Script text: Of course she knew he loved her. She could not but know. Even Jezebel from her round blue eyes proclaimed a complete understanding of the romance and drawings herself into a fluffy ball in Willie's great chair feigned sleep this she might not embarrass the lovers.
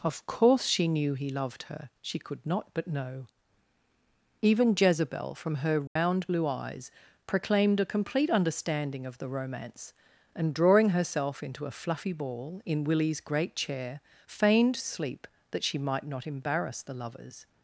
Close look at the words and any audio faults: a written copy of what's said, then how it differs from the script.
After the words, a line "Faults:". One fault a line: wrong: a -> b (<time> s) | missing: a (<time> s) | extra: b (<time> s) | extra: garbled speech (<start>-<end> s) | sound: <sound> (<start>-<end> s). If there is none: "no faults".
Of course she knew he loved her. She could not but know. Even Jezebel from her round blue eyes proclaimed a complete understanding of the romance and drawing herself into a fluffy ball in Willie's great chair feigned sleep that she might not embarrass the lovers.
Faults:
sound: dropout (5.9-6.0 s)
wrong: drawings -> drawing (10.5 s)
wrong: this -> that (15.5 s)